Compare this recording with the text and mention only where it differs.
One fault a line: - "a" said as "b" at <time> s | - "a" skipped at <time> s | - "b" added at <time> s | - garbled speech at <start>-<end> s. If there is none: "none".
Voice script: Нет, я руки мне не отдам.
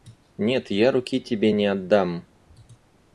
- "мне" said as "тебе" at 1.2 s